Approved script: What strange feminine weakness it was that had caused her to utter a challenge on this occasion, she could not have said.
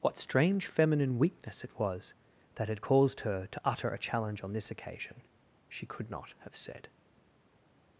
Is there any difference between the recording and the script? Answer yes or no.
no